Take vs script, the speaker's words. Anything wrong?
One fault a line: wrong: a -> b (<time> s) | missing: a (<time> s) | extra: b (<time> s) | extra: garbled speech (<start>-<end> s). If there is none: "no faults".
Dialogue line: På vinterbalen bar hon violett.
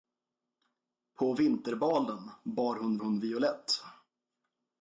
extra: hon (3.0 s)